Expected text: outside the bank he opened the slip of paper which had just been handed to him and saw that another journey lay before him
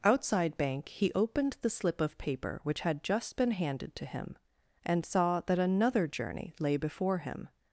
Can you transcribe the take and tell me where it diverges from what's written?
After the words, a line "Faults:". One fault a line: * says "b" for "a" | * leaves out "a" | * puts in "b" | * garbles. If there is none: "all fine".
outside bank he opened the slip of paper which had just been handed to him and saw that another journey lay before him
Faults:
* leaves out "the"